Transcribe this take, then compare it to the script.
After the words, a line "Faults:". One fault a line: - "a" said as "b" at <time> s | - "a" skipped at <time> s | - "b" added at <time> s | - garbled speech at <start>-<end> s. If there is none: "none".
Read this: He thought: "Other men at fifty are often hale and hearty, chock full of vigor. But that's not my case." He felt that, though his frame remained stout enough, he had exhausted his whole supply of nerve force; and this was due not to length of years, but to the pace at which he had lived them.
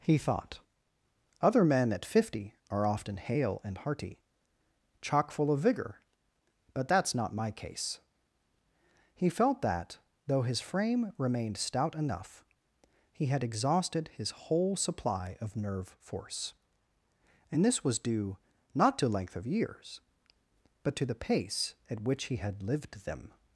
He thought: "Other men at fifty are often hale and hearty, chock full of vigor. But that's not my case." He felt that, though his frame remained stout enough, he had exhausted his whole supply of nerve force; and this was due not to length of years, but to the pace at which he had lived them.
Faults:
none